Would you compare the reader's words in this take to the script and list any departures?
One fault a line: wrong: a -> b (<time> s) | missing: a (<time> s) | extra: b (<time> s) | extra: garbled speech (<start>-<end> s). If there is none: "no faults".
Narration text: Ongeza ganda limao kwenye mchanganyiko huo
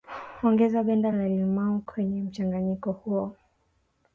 extra: la (1.1 s)